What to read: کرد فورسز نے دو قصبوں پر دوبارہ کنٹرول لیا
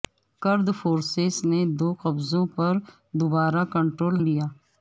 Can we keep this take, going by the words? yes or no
yes